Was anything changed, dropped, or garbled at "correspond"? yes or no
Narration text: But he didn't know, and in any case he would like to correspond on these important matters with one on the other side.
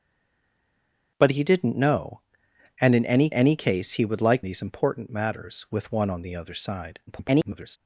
yes